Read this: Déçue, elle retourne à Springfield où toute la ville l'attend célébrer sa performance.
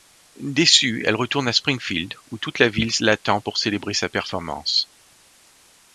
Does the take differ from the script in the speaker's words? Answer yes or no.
yes